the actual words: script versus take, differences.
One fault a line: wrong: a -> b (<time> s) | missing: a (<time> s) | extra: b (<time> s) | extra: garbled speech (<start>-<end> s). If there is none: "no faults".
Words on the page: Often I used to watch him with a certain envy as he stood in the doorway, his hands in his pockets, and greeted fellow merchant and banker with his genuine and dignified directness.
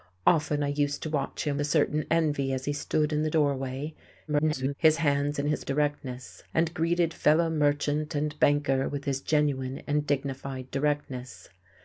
missing: with (1.6 s)
extra: garbled speech (4.3-4.8 s)
wrong: pockets -> directness (5.6 s)